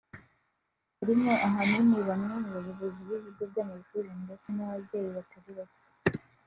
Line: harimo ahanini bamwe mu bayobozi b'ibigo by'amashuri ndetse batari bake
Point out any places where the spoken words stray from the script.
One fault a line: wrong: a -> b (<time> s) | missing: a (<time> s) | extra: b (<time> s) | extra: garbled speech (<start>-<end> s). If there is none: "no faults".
extra: n'ababyeyi (4.6 s)